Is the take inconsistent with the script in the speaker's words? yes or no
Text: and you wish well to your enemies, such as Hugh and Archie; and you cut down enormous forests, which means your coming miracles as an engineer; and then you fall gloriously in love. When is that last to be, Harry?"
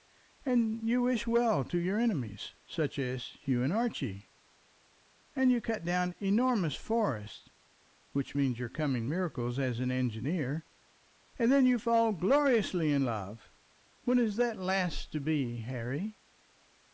no